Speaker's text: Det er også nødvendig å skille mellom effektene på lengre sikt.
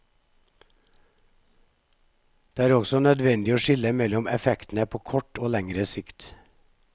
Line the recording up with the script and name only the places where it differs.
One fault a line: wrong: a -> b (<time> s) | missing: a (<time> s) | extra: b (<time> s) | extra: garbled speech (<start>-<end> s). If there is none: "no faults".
extra: kort og (5.1 s)